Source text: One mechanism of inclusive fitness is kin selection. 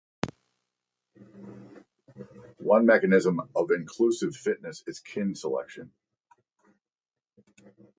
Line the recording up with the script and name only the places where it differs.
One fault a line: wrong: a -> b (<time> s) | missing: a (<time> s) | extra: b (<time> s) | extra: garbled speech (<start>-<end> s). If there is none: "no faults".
no faults